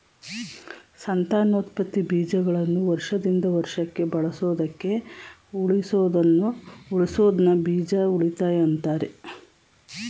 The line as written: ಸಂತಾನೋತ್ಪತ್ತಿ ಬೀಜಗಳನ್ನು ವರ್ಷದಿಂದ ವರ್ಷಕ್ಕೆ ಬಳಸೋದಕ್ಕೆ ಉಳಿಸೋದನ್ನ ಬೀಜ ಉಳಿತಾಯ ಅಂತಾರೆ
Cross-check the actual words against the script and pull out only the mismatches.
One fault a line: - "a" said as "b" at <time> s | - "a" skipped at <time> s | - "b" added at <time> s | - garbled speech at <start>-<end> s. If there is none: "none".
none